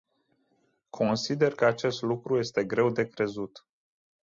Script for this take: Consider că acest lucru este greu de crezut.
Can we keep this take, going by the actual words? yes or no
yes